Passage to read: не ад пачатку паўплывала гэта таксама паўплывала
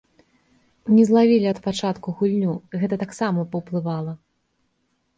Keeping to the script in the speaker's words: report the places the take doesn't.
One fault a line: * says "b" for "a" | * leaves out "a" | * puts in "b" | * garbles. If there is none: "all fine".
* puts in "злавілі"
* says "гульню" for "паўплывала"